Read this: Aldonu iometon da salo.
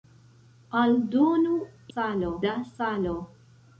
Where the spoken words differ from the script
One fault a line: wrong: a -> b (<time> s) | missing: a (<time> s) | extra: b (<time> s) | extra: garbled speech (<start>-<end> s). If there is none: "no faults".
wrong: iometon -> salo (1.9 s)